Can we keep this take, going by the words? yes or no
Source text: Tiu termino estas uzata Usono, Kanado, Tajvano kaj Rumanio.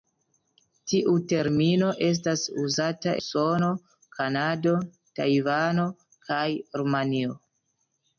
yes